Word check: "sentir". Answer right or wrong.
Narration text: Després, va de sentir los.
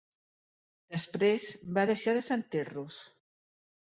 right